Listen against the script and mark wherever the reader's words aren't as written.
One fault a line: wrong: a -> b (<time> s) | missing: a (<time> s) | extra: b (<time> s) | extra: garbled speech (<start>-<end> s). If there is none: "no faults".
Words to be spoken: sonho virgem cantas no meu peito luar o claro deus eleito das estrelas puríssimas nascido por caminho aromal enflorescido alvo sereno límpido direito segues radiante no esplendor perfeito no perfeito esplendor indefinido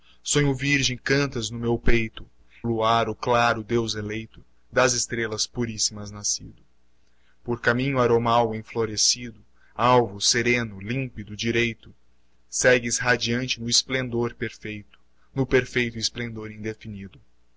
no faults